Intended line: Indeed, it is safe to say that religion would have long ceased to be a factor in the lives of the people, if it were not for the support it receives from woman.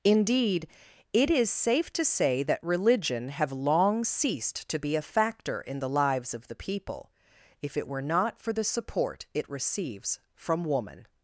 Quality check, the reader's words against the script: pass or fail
fail